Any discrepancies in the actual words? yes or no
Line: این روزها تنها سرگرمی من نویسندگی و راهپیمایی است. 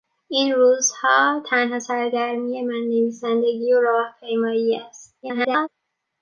yes